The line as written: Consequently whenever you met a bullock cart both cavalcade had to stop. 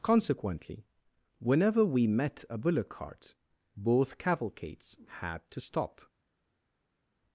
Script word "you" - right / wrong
wrong